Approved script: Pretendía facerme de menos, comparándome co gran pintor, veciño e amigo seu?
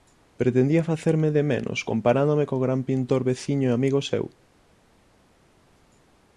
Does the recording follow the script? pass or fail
pass